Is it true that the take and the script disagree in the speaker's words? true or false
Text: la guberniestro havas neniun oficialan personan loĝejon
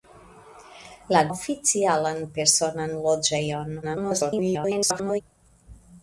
true